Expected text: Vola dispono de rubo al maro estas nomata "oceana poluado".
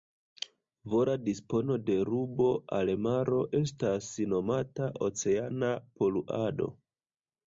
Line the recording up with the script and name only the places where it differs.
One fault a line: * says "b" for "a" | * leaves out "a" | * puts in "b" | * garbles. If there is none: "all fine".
all fine